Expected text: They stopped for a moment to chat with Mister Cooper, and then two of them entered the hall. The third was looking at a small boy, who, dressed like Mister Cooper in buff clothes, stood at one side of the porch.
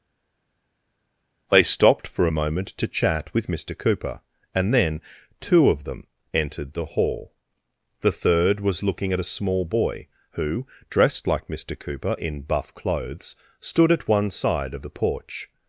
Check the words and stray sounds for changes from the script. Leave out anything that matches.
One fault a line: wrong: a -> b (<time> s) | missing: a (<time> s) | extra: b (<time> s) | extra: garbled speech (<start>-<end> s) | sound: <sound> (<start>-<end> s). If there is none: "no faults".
no faults